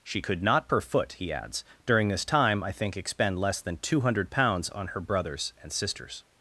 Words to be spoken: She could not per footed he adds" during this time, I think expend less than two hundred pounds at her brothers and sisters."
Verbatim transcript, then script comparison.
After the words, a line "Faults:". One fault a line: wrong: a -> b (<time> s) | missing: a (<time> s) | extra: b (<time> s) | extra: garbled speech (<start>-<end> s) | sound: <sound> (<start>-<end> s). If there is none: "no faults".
She could not per foot he adds" during this time, I think expend less than two hundred pounds on her brothers and sisters."
Faults:
wrong: footed -> foot (0.8 s)
wrong: at -> on (4.7 s)